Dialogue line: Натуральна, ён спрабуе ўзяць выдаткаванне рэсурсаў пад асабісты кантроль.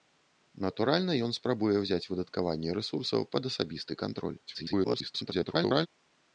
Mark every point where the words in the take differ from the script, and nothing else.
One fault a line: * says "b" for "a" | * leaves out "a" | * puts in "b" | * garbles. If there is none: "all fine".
* garbles